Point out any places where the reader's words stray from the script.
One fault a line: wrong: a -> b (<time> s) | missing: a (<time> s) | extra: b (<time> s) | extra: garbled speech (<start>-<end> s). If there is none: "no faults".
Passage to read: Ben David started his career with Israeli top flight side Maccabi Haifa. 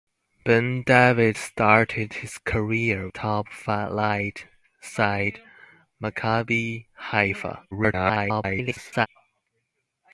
missing: with Israeli (3.1 s)
extra: garbled speech (7.7-9.1 s)